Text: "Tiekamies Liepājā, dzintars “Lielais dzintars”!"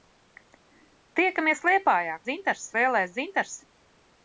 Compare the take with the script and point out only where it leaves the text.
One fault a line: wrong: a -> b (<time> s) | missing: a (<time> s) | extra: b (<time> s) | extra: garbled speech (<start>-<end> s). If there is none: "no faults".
no faults